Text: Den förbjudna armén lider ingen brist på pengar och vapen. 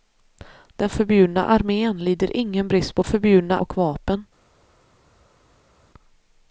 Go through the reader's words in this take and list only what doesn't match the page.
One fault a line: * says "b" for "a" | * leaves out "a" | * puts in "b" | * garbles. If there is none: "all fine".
* says "förbjudna" for "pengar"